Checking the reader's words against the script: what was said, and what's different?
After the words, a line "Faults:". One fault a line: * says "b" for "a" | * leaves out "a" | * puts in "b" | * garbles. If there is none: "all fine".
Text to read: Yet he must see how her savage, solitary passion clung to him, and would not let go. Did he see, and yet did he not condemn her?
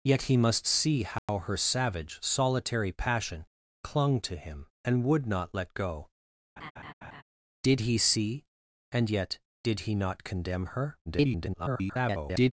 Yet he must see how her savage, solitary passion clung to him, and would not let go. Did he see, and yet did he not condemn her? [garbled]
Faults:
* garbles